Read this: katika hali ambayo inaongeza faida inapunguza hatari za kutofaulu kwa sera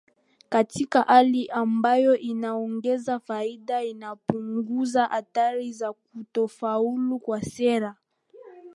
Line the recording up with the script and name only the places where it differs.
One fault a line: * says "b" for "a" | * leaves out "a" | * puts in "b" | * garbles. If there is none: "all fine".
all fine